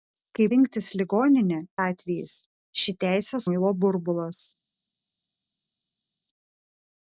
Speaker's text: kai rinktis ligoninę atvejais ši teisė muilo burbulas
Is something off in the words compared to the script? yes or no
no